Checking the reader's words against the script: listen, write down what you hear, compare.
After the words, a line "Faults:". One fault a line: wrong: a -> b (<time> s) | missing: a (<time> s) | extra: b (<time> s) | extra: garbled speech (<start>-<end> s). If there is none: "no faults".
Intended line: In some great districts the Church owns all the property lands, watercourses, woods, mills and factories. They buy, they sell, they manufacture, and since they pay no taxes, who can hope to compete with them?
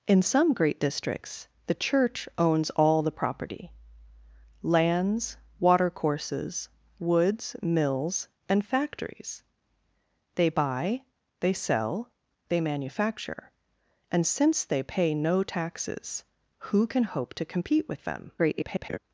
In some great districts the Church owns all the property lands, watercourses, woods, mills and factories. They buy, they sell, they manufacture, and since they pay no taxes, who can hope to compete with them? [garbled]
Faults:
extra: garbled speech (18.4-19.0 s)